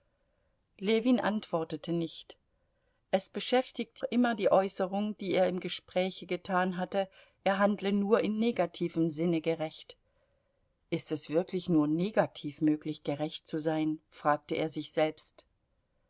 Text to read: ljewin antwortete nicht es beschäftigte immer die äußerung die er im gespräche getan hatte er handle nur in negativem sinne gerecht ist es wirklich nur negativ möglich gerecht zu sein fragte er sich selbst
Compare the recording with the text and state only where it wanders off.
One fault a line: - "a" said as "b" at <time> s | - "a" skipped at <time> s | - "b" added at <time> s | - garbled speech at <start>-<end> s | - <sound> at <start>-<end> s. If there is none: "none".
none